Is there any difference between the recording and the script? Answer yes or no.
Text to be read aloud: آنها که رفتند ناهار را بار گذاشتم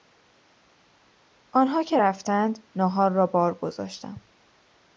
no